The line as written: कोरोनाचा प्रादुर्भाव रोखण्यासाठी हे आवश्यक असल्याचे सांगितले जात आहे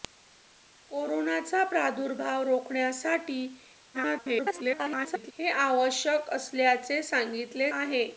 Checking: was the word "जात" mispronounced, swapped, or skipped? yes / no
yes